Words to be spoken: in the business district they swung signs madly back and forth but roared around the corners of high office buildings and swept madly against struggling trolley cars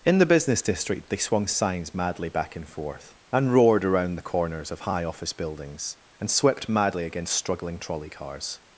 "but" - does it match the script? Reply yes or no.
no